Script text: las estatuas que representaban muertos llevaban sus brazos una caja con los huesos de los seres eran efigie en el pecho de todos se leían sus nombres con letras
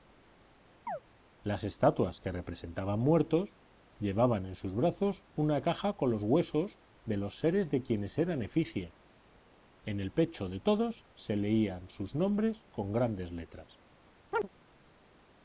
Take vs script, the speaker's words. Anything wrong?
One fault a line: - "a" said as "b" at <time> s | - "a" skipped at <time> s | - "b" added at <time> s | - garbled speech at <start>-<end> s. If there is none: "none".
- "en" added at 4.4 s
- "de quienes" added at 7.7 s
- "grandes" added at 12.9 s